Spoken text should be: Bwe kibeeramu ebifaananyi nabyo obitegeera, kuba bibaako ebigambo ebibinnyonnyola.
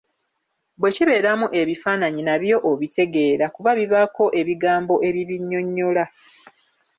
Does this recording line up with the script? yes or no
yes